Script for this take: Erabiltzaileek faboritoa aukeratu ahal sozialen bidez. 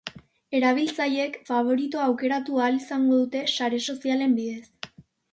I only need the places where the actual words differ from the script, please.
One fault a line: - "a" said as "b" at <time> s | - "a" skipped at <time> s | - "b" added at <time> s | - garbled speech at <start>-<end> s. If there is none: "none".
- "izango dute sare" added at 2.8 s